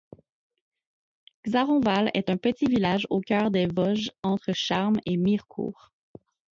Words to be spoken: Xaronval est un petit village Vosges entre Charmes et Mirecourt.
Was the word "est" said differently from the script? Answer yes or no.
no